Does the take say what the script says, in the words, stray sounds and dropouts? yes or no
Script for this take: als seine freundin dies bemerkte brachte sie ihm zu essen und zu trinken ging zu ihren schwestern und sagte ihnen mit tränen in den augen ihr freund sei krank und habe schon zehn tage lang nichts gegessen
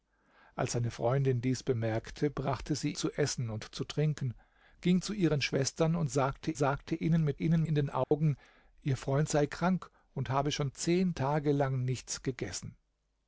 no